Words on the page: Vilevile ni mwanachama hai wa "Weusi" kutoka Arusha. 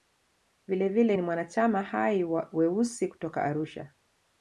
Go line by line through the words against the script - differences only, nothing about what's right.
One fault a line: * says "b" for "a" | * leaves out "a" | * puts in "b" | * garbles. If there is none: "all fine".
all fine